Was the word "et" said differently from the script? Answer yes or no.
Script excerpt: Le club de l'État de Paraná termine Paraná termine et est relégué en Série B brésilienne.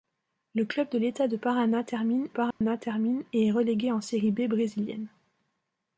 no